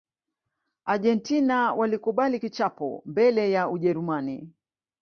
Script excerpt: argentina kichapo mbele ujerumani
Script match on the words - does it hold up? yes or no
no